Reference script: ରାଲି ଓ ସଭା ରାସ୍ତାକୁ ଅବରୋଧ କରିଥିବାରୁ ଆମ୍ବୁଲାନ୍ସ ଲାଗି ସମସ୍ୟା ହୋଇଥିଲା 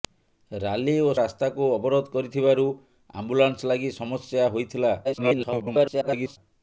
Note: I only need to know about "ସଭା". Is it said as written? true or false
false